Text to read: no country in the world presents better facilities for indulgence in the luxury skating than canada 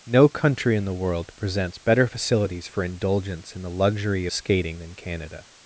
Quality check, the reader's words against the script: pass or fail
pass